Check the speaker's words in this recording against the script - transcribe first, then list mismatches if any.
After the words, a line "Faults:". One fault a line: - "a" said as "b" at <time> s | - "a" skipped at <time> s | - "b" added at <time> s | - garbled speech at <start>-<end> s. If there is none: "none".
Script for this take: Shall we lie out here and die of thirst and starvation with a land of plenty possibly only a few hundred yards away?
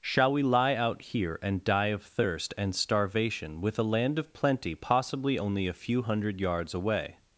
Shall we lie out here and die of thirst and starvation with a land of plenty possibly only a few hundred yards away?
Faults:
none